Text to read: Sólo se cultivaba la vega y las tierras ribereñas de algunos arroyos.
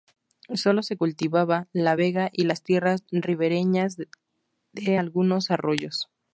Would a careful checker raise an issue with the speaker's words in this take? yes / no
no